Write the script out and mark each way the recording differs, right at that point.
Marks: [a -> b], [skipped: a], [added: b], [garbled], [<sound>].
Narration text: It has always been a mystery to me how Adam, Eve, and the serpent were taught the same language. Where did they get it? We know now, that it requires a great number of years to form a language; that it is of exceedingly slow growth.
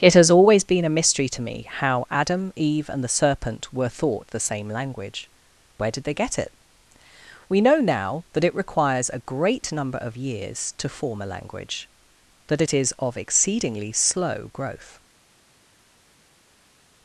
It has always been a mystery to me how Adam, Eve, and the serpent were [taught -> thought] the same language. Where did they get it? We know now, that it requires a great number of years to form a language; that it is of exceedingly slow growth.